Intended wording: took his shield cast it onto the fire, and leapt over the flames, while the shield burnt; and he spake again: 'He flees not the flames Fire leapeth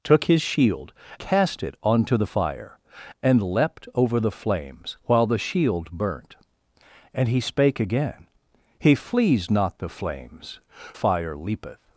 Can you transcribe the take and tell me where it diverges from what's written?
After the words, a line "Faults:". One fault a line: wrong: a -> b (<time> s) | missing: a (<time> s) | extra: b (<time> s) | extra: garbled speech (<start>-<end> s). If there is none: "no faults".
took his shield cast it onto the fire, and leapt over the flames, while the shield burnt; and he spake again: 'He flees not the flames Fire leapeth
Faults:
no faults